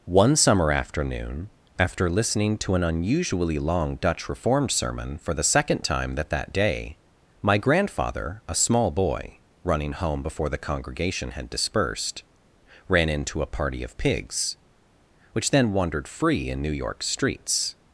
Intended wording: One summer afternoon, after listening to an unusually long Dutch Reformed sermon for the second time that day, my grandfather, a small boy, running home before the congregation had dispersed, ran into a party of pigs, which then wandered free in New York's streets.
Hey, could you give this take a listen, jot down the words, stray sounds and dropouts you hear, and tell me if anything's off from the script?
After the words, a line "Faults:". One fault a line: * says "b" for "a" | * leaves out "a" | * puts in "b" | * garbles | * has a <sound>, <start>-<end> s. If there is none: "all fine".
One summer afternoon, after listening to an unusually long Dutch Reformed sermon for the second time that that day, my grandfather, a small boy, running home before the congregation had dispersed, ran into a party of pigs, which then wandered free in New York's streets.
Faults:
* puts in "that"